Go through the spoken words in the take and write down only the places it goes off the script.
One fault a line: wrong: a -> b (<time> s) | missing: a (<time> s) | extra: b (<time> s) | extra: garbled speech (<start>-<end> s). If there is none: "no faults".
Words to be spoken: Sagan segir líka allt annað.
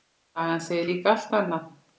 no faults